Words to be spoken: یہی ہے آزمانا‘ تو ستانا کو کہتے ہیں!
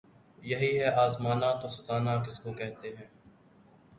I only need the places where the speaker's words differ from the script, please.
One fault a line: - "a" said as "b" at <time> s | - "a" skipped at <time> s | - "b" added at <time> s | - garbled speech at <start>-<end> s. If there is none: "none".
- "کس" added at 2.2 s